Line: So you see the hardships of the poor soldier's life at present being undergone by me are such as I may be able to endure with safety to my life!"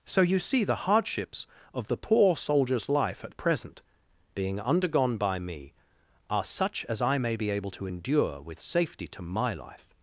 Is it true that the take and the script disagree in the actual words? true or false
false